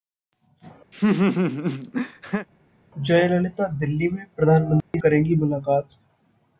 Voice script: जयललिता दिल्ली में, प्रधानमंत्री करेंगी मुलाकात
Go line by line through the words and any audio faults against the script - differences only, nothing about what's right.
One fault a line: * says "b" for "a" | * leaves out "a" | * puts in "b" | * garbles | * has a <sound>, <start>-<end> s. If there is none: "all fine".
* has a laugh, 0.9-2.5 s
* has a dropout, 4.8-4.9 s